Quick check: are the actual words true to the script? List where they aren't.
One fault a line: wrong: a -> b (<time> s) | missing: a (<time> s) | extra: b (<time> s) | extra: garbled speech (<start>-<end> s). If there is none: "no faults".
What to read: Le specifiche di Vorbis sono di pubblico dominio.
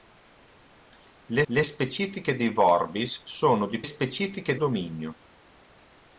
extra: le (1.4 s)
wrong: pubblico -> specifiche (3.8 s)